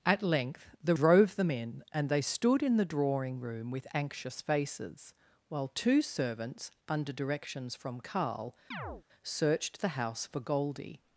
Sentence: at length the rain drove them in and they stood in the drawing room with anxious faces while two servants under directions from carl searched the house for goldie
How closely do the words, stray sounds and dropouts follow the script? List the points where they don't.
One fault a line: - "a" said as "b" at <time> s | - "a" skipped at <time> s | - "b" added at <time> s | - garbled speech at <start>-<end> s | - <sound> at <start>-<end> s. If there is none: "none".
- "rain" skipped at 0.9 s
- chirp at 8.7-9.0 s